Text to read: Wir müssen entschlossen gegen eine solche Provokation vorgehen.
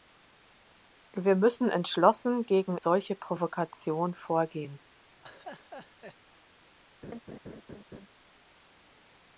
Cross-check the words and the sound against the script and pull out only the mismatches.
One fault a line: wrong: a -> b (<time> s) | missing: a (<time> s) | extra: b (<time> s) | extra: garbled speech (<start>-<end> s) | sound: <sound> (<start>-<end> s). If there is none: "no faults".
missing: eine (2.8 s)
sound: laugh (5.2-6.2 s)
sound: laugh (7.0-8.1 s)